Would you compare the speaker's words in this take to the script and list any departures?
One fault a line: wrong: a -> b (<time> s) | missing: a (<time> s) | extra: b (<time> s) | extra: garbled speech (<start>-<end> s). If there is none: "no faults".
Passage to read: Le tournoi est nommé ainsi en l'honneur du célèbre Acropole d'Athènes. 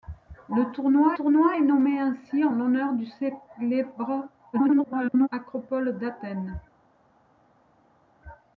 extra: tournoi (1.1 s)
extra: garbled speech (4.5-5.3 s)